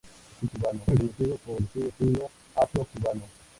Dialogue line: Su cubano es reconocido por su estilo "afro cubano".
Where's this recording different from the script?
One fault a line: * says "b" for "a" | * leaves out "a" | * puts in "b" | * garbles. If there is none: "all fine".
all fine